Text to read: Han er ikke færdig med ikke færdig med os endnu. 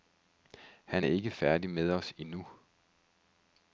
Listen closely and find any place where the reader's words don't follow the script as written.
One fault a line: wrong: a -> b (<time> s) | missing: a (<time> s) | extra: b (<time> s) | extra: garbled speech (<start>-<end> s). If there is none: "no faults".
missing: ikke færdig med (1.9 s)